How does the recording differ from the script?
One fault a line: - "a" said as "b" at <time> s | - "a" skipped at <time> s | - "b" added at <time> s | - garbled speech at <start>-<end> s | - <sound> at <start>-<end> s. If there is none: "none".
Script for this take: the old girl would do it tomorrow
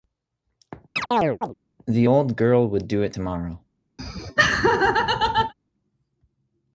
- chirp at 1.0-1.5 s
- laugh at 4.0-5.5 s